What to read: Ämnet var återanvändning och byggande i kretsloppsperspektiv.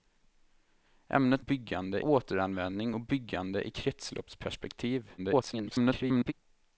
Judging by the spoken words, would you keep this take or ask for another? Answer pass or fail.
fail